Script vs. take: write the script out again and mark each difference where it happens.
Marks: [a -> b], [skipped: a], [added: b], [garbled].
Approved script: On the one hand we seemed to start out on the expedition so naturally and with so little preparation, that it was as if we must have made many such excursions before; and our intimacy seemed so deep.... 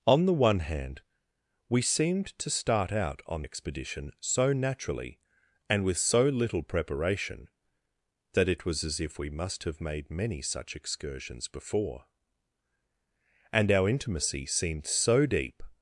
On the one hand we seemed to start out on [skipped: the] expedition so naturally and with so little preparation, that it was as if we must have made many such excursions before; and our intimacy seemed so deep....